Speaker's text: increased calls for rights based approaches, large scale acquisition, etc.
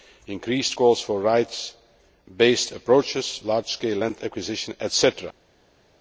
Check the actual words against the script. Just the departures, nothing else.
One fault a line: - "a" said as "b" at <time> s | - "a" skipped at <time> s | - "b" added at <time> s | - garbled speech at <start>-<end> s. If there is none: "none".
- "land" added at 4.0 s